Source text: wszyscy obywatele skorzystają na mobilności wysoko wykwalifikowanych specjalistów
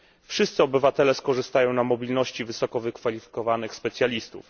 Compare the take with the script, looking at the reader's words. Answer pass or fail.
pass